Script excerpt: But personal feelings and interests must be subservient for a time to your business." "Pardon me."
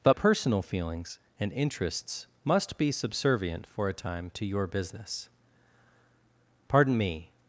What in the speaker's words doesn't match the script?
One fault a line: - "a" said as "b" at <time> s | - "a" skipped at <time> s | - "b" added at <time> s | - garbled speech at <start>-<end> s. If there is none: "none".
none